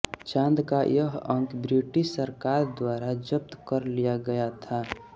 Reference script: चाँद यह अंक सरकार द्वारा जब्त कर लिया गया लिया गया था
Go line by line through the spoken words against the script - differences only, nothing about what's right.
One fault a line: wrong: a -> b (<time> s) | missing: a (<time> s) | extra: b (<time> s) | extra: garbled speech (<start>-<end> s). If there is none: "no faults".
extra: का (0.7 s)
extra: ब्रिटिश (1.6 s)
missing: लिया गया (4.5 s)